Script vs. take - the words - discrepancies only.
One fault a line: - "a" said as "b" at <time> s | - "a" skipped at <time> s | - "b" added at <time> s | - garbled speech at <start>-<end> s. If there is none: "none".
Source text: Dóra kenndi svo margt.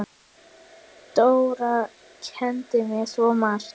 - "mér" added at 2.9 s